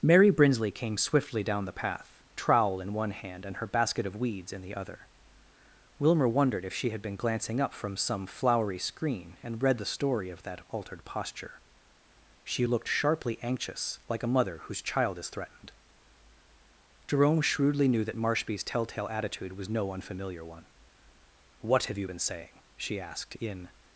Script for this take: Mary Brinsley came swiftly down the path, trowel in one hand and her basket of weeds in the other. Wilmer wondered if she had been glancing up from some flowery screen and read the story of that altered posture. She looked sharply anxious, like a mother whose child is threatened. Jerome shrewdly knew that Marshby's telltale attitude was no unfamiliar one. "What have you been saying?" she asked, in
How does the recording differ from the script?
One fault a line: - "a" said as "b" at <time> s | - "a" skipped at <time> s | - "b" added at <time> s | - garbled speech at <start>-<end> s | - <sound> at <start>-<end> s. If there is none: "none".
none